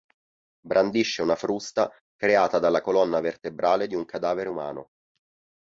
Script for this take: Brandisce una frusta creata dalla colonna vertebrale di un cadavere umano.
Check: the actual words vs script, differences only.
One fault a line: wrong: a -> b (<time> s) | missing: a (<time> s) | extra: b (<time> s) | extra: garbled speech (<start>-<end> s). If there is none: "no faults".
no faults